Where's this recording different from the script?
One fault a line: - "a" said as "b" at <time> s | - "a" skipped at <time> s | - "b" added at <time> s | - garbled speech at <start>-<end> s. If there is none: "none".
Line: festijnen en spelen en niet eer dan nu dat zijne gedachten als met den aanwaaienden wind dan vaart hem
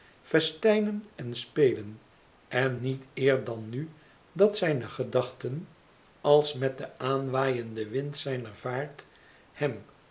- "dan" said as "zijner" at 8.2 s